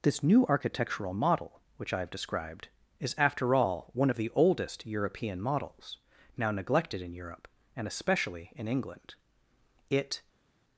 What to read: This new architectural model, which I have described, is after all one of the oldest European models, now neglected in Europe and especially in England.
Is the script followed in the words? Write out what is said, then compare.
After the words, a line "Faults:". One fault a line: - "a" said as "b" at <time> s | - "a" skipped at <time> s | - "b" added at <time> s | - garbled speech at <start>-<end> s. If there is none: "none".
This new architectural model, which I have described, is after all one of the oldest European models, now neglected in Europe and especially in England. It
Faults:
- "It" added at 9.9 s